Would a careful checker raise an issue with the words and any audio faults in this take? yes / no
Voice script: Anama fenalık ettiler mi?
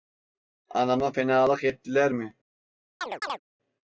yes